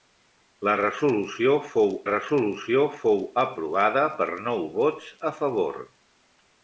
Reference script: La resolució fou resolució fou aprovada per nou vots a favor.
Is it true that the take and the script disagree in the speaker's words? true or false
false